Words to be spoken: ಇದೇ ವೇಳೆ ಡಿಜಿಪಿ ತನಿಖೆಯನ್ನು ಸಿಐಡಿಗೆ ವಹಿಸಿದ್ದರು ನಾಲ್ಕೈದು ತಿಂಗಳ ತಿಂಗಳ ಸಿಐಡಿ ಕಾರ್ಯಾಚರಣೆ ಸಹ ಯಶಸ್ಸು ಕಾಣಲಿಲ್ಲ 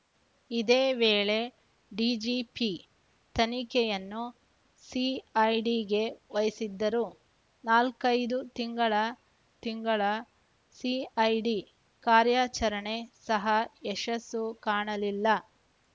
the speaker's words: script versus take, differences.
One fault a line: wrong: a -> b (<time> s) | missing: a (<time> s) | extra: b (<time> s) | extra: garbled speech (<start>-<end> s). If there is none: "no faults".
no faults